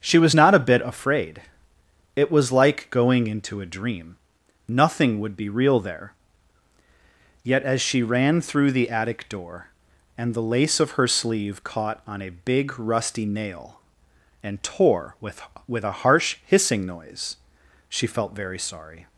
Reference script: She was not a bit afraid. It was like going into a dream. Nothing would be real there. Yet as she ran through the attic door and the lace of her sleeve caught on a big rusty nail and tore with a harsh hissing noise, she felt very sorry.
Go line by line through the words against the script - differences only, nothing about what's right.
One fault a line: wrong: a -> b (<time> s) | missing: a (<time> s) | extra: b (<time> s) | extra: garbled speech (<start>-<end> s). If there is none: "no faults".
extra: with (15.7 s)